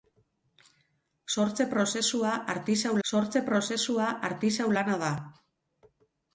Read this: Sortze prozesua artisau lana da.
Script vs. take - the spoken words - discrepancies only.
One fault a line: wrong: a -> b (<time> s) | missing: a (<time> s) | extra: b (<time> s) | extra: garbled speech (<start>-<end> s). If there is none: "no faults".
extra: sortze prozesua artisau (3.1 s)